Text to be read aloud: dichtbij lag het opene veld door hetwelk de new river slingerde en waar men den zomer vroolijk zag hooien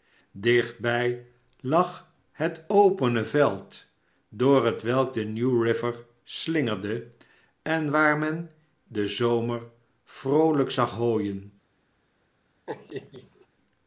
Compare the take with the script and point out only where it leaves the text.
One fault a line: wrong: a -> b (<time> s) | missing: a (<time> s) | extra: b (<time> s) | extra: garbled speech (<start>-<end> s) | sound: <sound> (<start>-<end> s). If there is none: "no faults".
sound: laugh (12.7-13.5 s)